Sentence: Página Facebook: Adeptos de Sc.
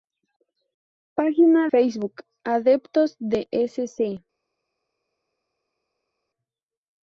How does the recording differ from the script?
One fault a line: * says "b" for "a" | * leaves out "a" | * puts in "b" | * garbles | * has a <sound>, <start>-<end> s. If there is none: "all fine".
all fine